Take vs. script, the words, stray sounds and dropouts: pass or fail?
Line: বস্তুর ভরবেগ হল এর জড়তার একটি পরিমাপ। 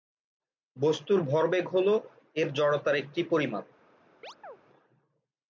fail